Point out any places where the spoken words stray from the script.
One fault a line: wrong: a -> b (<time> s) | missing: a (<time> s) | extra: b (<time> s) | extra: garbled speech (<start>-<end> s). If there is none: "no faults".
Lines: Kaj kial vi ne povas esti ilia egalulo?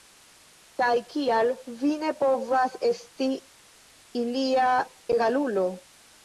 no faults